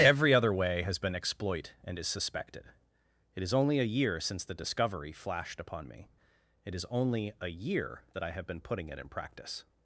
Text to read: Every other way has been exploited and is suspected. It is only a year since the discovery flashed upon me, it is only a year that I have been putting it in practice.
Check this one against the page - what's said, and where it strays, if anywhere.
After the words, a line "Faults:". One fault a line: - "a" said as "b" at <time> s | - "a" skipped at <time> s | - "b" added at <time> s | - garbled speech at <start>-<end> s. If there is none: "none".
Every other way has been exploit and is suspected. It is only a year since the discovery flashed upon me, it is only a year that I have been putting it in practice.
Faults:
- "exploited" said as "exploit" at 1.1 s